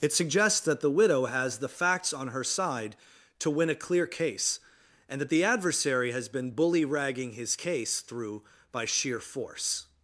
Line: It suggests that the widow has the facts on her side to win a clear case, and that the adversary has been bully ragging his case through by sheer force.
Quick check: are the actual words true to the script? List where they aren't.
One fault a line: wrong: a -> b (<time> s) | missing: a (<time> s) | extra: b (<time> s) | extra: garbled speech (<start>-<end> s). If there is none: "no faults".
no faults